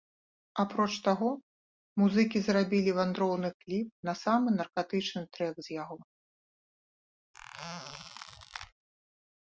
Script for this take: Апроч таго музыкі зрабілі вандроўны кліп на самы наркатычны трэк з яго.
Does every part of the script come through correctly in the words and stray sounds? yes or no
no